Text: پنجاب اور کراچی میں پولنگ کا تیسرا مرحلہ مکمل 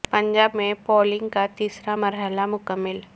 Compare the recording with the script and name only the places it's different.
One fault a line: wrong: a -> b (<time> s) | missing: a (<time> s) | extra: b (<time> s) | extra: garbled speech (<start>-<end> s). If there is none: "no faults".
missing: اور کراچی (0.5 s)